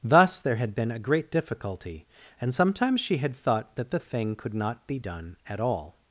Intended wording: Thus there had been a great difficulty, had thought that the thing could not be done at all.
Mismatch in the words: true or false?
true